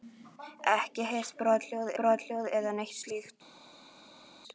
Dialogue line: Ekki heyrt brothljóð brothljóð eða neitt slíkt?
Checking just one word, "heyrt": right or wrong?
right